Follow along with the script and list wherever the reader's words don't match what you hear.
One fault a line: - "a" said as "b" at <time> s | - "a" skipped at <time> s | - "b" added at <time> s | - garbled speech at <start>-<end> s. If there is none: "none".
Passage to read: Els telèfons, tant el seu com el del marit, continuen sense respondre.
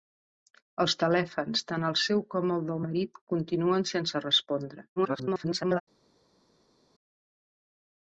- garbled speech at 5.0-5.8 s